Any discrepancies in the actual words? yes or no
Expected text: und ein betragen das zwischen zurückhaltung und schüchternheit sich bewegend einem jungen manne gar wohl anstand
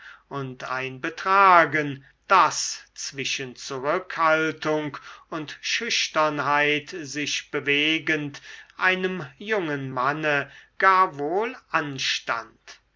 no